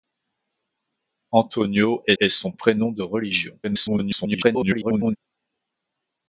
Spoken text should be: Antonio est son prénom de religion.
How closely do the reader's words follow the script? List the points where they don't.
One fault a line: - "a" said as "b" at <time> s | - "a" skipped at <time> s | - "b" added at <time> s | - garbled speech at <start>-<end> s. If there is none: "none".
- "est" added at 2.2 s
- garbled speech at 3.6-5.2 s